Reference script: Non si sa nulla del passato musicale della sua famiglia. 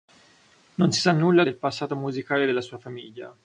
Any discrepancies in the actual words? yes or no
no